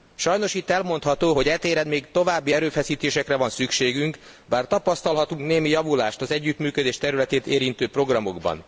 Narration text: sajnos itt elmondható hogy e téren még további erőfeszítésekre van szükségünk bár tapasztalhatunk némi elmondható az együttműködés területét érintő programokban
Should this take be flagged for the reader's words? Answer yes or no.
yes